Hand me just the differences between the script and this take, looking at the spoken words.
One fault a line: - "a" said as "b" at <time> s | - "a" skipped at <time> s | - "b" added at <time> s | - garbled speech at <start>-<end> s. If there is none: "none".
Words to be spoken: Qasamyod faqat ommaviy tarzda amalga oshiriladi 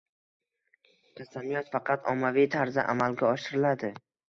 none